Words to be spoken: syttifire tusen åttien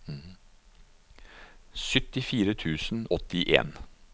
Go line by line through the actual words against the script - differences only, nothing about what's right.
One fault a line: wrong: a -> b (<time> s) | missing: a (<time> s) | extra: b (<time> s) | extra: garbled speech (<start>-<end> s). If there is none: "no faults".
no faults